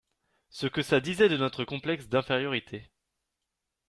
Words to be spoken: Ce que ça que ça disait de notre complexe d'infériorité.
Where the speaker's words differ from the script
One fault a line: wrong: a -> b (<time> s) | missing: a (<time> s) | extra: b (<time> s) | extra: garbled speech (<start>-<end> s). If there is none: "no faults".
missing: que ça (1.0 s)